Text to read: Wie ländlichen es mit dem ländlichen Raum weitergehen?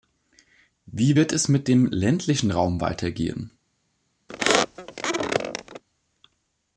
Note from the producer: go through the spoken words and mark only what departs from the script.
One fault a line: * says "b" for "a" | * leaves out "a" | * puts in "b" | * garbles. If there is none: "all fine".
* says "wird" for "ländlichen"